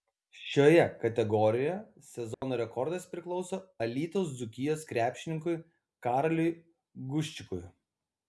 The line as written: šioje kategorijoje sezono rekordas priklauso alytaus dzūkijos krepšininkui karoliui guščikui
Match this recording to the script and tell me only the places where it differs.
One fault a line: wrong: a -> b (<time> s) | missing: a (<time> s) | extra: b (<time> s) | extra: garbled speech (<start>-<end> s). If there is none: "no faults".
no faults